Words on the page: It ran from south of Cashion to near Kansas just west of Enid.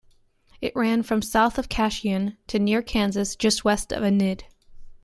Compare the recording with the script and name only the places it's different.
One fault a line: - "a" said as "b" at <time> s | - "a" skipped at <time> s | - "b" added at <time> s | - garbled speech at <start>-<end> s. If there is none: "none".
none